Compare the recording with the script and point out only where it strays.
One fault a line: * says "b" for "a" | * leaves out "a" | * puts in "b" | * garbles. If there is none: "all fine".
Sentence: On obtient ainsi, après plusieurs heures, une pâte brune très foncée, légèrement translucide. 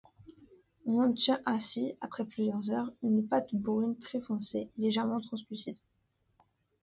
all fine